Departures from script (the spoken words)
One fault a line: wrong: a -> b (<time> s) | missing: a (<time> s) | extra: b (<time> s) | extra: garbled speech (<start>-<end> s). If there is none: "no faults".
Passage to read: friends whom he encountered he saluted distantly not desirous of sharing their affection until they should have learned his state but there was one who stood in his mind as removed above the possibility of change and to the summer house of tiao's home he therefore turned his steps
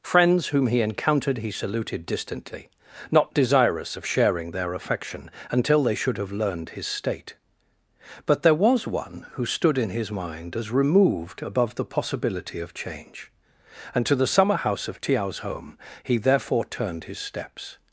no faults